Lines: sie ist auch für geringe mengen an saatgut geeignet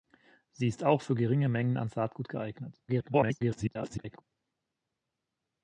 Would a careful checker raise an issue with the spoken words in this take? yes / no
yes